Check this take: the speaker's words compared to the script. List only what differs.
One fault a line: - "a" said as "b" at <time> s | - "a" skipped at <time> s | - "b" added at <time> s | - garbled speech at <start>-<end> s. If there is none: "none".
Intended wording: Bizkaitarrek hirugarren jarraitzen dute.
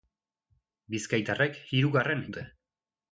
- "jarraitzen" skipped at 2.3 s